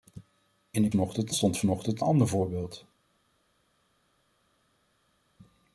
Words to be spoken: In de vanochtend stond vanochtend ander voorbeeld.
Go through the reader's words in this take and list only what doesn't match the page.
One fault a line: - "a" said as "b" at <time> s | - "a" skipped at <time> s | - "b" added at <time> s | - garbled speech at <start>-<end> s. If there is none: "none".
none